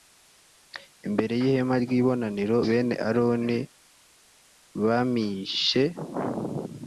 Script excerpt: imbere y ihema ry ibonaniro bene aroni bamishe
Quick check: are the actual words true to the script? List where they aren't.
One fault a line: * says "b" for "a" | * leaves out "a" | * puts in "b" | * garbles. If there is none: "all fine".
all fine